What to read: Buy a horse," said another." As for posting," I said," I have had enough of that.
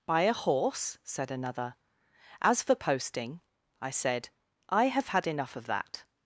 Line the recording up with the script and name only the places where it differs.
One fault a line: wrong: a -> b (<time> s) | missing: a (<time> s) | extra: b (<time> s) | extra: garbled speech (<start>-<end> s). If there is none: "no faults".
no faults